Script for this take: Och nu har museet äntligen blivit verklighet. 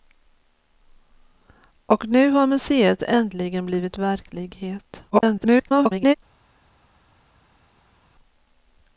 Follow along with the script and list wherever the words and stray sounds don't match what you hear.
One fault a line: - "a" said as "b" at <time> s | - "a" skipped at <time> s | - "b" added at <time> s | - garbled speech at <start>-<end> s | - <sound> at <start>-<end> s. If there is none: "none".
- garbled speech at 5.1-6.1 s